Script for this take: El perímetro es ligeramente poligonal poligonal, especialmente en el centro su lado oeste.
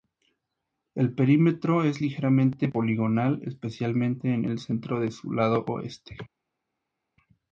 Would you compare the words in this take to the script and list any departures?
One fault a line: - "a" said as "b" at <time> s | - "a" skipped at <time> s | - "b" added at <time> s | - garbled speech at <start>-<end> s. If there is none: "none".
- "poligonal" skipped at 3.4 s
- "de" added at 5.0 s